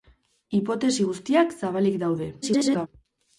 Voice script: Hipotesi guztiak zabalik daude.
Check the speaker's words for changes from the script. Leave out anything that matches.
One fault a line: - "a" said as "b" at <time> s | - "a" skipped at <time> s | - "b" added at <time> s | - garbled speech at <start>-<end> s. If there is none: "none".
- garbled speech at 2.4-2.9 s